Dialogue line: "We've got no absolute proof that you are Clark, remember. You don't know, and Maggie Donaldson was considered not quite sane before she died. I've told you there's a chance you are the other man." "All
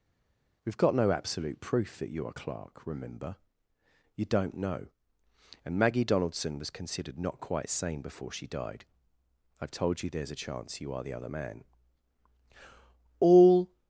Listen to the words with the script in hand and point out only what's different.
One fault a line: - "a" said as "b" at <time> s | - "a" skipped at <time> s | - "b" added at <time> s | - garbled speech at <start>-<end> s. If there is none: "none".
none